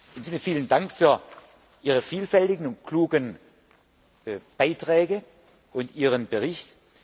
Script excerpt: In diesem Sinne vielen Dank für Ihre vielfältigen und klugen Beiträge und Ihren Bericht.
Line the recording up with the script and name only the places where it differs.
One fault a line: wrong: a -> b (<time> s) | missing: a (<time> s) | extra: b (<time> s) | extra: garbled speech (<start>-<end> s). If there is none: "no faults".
missing: diesem (0.2 s)